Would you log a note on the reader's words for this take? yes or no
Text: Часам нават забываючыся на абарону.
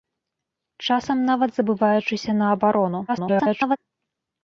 yes